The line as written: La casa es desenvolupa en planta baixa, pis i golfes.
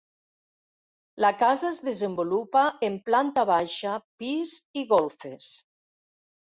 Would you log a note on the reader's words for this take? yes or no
no